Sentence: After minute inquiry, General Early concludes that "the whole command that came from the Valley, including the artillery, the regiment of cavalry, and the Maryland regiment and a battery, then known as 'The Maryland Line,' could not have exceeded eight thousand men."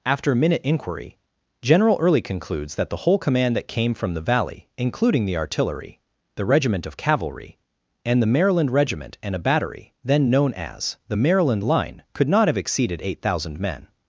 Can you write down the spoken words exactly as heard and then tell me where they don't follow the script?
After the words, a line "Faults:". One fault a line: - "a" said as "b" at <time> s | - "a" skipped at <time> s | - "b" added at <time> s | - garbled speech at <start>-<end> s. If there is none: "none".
After minute inquiry, General Early concludes that "the whole command that came from the Valley, including the artillery, the regiment of cavalry, and the Maryland regiment and a battery, then known as 'The Maryland Line,' could not have exceeded eight thousand men."
Faults:
none